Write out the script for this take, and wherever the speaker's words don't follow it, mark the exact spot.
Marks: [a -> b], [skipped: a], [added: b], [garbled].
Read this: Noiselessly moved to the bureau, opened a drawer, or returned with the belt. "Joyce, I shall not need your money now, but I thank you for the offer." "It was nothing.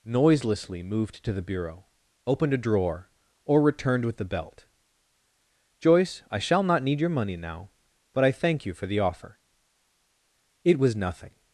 Noiselessly moved to the bureau, opened a drawer, or returned with the belt. "Joyce, I shall not need your money now, but I thank you for the offer." "It was nothing.